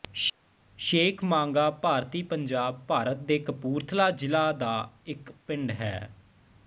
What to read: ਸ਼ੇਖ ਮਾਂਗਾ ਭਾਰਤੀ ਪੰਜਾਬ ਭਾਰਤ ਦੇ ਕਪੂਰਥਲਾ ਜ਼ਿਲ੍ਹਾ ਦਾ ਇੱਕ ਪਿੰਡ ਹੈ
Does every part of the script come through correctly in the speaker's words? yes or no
yes